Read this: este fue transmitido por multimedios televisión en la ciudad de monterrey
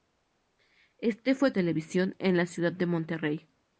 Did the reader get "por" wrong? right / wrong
wrong